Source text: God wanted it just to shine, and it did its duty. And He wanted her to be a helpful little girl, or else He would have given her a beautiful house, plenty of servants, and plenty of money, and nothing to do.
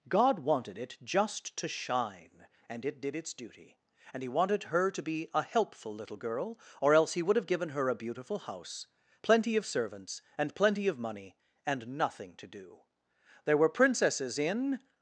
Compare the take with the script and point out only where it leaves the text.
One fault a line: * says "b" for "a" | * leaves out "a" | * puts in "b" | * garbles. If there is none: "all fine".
* puts in "There were princesses in"